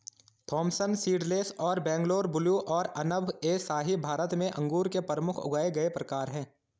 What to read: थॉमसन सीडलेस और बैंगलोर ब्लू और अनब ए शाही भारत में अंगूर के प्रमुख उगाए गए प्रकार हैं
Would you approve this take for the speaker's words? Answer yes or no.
yes